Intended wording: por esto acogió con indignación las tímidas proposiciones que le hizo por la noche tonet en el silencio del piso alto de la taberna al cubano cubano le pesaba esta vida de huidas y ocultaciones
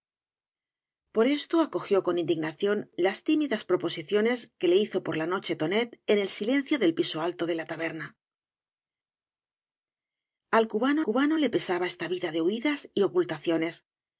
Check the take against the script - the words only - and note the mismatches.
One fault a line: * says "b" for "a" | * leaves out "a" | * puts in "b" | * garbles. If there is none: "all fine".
all fine